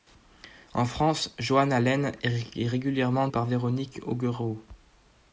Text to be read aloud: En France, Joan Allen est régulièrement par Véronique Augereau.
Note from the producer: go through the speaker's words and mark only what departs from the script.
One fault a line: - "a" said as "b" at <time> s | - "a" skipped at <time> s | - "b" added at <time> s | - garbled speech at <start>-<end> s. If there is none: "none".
none